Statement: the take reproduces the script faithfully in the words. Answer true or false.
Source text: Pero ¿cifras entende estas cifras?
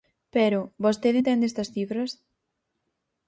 false